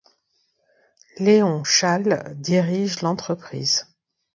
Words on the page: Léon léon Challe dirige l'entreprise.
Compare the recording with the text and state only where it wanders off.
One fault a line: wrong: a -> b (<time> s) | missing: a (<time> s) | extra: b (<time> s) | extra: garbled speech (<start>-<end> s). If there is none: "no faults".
missing: léon (1.6 s)